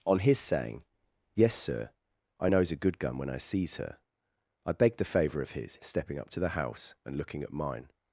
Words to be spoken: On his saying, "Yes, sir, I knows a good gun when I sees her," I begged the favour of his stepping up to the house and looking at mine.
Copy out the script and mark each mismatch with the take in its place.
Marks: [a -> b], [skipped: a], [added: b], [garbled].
On his saying, "Yes, sir, I knows a good gun when I sees her," I begged the favour of his stepping up to the house and looking at mine.